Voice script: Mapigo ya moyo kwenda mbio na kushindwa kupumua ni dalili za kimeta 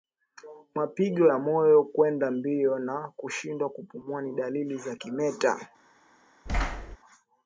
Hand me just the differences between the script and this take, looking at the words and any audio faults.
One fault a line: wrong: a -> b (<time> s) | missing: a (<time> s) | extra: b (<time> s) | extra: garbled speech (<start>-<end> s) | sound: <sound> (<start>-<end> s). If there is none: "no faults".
sound: thud (6.5-7.0 s)